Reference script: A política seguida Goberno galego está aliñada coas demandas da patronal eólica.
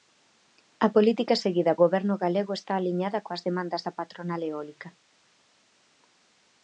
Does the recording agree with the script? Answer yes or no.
yes